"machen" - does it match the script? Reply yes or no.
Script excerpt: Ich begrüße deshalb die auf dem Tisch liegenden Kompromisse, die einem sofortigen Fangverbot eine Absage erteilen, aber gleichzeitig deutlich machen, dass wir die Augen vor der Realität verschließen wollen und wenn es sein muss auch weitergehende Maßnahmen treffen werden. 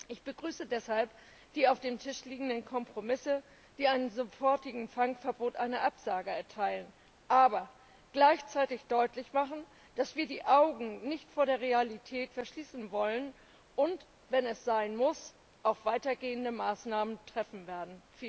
yes